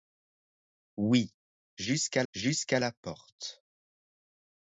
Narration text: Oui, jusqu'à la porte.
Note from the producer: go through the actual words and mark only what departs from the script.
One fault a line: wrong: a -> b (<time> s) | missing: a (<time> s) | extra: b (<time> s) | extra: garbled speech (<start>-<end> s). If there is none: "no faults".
extra: jusqu'à (2.3 s)